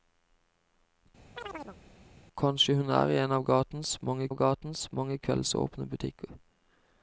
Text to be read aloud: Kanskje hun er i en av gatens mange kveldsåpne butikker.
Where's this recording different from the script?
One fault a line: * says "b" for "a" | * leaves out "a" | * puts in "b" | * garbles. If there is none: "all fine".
* puts in "av gatens mange"